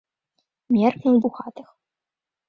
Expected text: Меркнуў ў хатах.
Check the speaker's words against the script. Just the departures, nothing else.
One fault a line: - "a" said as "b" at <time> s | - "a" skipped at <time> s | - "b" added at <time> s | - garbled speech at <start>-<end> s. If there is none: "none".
none